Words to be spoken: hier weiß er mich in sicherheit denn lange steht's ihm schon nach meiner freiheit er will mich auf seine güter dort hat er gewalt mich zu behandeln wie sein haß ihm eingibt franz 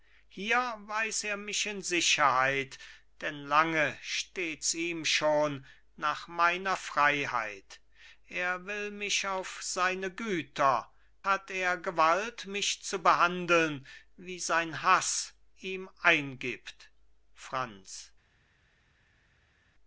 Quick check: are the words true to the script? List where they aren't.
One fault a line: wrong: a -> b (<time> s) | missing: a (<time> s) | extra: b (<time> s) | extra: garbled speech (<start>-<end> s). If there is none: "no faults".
missing: dort (10.9 s)